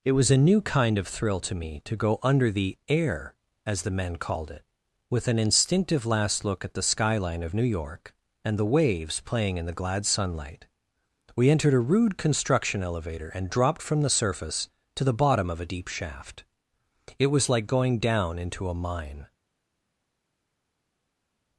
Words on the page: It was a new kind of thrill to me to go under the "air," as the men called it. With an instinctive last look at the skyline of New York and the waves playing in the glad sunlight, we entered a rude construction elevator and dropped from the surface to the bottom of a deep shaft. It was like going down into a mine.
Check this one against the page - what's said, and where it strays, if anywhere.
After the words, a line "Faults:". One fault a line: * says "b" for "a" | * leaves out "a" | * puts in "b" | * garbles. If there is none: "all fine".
It was a new kind of thrill to me to go under the "air," as the men called it. With an instinctive last look at the skyline of New York and the waves playing in the glad sunlight, we entered a rude construction elevator and dropped from the surface to the bottom of a deep shaft. It was like going down into a mine.
Faults:
all fine